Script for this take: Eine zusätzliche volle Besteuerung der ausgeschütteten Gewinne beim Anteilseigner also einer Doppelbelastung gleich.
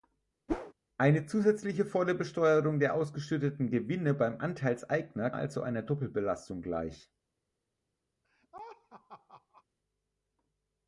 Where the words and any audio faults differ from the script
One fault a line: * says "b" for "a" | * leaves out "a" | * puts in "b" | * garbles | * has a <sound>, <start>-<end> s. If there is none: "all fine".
* has a whoosh, 0.5-0.7 s
* has a laugh, 8.2-9.6 s